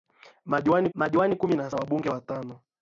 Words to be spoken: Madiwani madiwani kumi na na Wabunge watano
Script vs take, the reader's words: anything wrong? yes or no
no